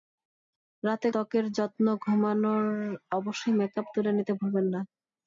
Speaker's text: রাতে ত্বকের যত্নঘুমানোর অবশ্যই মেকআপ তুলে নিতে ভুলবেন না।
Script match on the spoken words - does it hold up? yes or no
yes